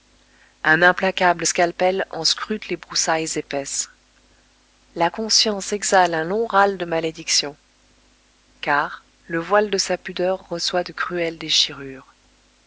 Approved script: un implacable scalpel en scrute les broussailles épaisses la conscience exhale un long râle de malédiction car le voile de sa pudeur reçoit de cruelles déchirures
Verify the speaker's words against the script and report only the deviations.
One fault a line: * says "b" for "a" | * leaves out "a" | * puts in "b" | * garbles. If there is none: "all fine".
all fine